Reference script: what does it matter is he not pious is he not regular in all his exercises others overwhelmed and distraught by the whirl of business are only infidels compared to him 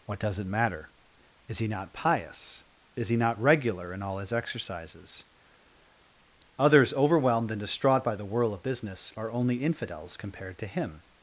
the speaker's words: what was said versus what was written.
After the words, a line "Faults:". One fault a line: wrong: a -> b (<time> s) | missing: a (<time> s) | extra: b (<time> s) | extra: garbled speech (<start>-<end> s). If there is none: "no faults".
what does it matter is he not pious is he not regular in all his exercises others overwhelmed and distraught by the whirl of business are only infidels compared to him
Faults:
no faults